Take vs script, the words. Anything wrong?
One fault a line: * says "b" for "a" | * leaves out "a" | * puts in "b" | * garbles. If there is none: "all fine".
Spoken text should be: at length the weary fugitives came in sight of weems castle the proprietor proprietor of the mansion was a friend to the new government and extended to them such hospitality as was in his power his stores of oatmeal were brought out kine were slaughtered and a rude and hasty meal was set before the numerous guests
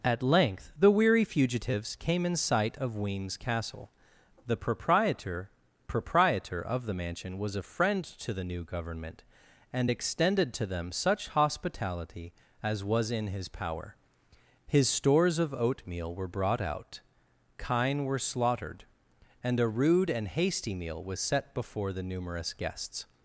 all fine